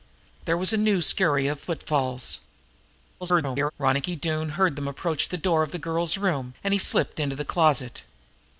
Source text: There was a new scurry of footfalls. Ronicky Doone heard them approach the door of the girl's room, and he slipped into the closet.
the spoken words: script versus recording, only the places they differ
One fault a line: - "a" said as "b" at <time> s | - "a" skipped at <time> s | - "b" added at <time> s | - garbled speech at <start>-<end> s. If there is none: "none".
- garbled speech at 3.2-3.7 s